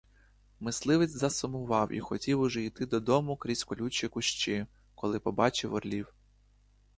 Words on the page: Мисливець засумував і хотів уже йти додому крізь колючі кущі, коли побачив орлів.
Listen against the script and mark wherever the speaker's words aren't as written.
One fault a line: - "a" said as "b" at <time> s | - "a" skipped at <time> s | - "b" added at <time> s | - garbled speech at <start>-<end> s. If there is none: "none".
none